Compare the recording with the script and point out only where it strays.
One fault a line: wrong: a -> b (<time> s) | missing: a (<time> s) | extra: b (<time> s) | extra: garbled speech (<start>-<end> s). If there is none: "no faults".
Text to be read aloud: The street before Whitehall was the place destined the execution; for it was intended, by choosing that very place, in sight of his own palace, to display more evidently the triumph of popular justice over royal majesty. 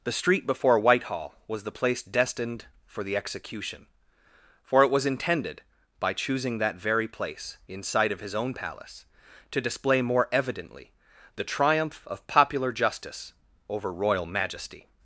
extra: for (2.9 s)